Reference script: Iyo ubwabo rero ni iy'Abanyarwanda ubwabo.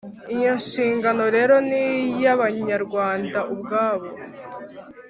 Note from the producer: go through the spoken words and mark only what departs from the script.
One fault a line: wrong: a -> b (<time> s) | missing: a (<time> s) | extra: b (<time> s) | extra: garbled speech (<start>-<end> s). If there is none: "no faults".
wrong: ubwabo -> nshingano (0.6 s)